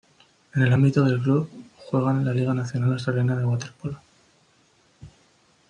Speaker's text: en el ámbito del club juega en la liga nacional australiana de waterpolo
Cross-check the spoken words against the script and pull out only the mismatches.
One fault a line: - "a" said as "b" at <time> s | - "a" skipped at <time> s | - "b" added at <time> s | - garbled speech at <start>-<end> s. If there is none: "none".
none